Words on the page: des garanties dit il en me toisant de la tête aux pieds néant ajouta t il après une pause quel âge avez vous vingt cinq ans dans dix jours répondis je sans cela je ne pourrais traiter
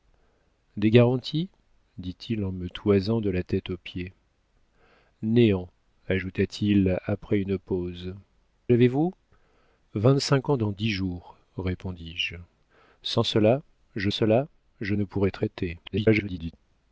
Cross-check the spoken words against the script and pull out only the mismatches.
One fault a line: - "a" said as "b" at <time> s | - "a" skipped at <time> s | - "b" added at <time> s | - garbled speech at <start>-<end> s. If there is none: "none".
- "quel âge" skipped at 8.2 s
- "cela je" added at 14.1 s
- garbled speech at 15.8-16.5 s